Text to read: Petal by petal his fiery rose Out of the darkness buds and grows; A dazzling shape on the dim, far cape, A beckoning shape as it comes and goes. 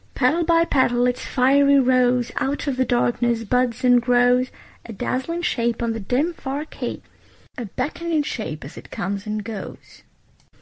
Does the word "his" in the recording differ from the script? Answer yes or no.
yes